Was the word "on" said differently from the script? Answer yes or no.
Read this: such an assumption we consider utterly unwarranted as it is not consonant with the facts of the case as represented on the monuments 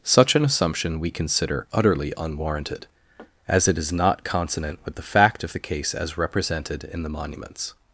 yes